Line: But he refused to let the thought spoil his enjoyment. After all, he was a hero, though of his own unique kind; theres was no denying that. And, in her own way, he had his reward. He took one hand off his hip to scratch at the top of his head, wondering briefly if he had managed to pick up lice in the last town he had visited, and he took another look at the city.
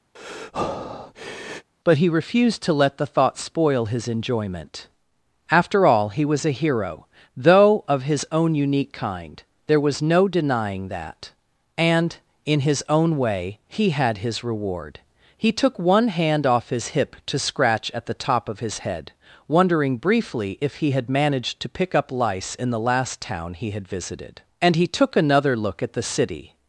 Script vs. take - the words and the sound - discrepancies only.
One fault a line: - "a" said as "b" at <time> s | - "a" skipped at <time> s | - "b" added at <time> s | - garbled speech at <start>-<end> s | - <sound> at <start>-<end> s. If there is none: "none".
- breath at 0.2-1.7 s
- "theres" said as "there" at 9.7 s
- "her" said as "his" at 12.6 s